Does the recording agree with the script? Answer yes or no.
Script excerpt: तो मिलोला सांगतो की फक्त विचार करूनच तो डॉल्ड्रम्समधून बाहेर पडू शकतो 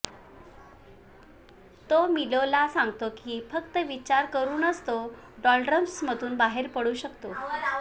yes